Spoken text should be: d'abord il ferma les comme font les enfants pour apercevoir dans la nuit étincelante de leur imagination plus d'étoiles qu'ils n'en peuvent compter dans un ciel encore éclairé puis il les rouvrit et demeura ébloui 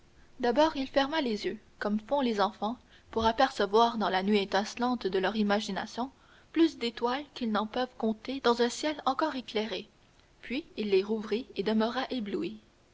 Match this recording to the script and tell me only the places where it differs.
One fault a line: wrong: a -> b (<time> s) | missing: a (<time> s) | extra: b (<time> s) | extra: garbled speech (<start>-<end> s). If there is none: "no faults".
extra: yeux (1.4 s)